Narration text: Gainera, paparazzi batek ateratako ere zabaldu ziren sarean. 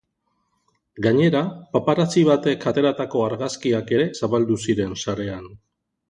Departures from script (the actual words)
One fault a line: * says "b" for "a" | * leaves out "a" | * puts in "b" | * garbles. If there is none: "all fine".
* puts in "argazkiak"